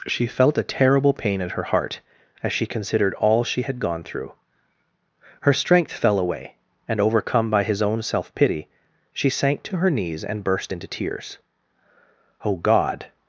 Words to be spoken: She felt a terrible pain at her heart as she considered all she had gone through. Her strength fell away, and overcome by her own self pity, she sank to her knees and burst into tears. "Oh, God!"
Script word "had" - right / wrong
right